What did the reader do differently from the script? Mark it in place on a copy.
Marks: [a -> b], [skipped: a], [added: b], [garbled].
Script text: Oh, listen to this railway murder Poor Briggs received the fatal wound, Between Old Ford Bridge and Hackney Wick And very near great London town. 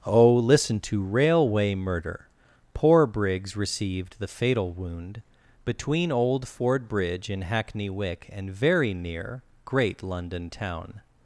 Oh, listen to [skipped: this] railway murder Poor Briggs received the fatal wound, Between Old Ford Bridge [and -> in] Hackney Wick And very near great London town.